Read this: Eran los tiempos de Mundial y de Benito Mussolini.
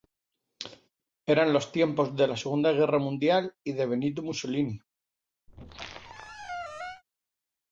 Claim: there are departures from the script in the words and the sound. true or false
true